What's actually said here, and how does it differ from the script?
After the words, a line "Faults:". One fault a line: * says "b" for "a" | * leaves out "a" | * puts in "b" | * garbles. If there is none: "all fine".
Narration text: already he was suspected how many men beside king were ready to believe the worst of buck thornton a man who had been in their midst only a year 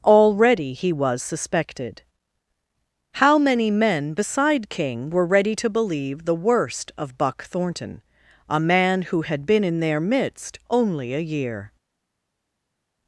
already he was suspected how many men beside king were ready to believe the worst of buck thornton a man who had been in their midst only a year
Faults:
all fine